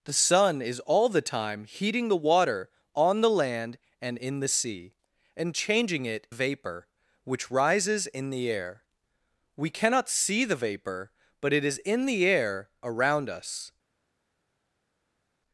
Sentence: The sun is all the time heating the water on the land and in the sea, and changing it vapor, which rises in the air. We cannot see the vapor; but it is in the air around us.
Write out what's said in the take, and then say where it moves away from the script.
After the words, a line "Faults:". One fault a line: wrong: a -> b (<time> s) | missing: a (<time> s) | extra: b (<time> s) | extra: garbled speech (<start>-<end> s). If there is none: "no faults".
The sun is all the time heating the water on the land and in the sea, and changing it vapor, which rises in the air. We cannot see the vapor; but it is in the air around us.
Faults:
no faults